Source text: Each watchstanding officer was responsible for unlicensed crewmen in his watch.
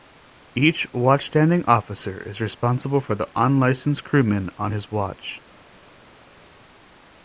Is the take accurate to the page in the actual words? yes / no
no